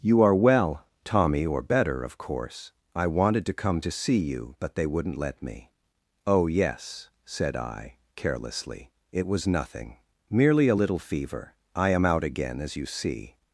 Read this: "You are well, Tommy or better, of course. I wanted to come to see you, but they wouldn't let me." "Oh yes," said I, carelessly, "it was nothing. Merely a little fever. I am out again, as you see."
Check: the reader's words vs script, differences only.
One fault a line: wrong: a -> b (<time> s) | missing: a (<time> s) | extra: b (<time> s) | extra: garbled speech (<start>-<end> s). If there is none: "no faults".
no faults